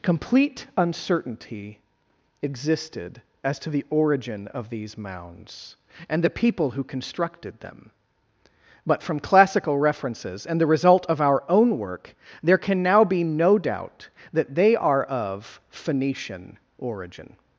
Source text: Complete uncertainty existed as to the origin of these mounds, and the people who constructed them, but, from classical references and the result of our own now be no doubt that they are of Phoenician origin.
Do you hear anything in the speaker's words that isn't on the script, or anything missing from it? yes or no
yes